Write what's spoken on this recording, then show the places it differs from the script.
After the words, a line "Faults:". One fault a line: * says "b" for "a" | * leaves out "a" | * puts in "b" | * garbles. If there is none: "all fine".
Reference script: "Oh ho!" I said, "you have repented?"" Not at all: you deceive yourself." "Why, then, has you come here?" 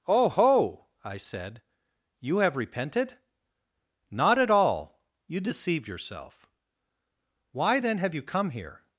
"Oh ho!" I said, "you have repented?"" Not at all: you deceive yourself." "Why, then, have you come here?"
Faults:
* says "have" for "has"